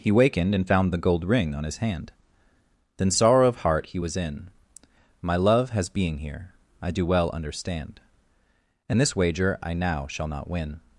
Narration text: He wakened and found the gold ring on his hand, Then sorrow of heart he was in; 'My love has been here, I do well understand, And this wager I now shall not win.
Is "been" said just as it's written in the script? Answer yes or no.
no